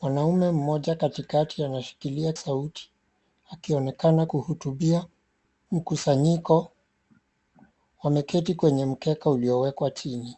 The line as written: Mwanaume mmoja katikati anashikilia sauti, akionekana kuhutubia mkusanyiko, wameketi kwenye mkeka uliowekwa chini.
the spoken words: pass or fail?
pass